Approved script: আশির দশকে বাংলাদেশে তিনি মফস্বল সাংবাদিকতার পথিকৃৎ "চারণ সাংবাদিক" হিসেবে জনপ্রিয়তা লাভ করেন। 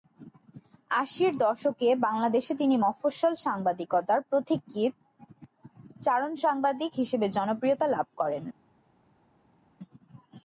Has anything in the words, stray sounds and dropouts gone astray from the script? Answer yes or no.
no